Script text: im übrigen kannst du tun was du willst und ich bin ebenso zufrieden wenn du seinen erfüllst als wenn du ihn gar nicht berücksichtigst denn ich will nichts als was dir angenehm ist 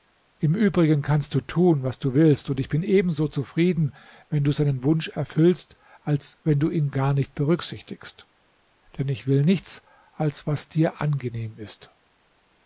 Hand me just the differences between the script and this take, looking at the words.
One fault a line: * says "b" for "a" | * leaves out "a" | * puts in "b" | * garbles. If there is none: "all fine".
* puts in "wunsch"